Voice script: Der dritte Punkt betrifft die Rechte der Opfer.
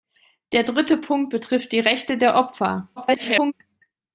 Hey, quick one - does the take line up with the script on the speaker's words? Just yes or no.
no